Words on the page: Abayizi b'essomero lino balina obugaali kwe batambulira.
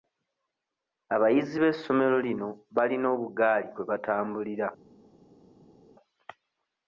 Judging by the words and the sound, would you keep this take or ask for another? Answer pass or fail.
pass